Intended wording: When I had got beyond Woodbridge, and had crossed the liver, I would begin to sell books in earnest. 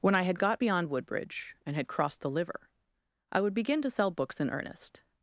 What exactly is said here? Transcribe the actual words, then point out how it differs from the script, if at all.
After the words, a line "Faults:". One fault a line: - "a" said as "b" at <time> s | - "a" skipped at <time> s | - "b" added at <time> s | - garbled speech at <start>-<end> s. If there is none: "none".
When I had got beyond Woodbridge, and had crossed the liver, I would begin to sell books in earnest.
Faults:
none